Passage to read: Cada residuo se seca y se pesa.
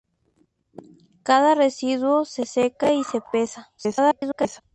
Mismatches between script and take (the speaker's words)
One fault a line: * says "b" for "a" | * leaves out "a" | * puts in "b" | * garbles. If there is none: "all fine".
* garbles